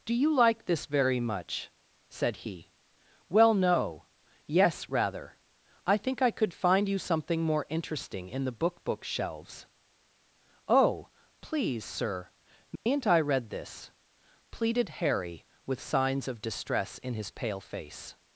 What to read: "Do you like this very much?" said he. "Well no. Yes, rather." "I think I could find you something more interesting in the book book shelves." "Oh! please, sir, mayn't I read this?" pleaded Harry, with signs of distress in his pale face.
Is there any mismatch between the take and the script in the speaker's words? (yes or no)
no